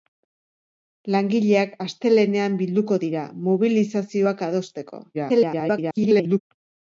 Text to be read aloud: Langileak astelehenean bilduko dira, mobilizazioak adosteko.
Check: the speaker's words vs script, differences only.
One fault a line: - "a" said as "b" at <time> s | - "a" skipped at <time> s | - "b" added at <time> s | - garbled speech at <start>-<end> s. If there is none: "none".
- garbled speech at 5.1-6.4 s